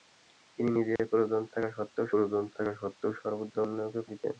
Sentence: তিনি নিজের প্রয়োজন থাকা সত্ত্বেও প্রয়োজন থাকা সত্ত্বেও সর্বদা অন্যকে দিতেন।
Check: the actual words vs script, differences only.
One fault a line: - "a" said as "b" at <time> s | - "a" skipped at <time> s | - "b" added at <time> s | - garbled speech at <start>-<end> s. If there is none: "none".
none